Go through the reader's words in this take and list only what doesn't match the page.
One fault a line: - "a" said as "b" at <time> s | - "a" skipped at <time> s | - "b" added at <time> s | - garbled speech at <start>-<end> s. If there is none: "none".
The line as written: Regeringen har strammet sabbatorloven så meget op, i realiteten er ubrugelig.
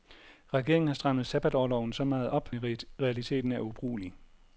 none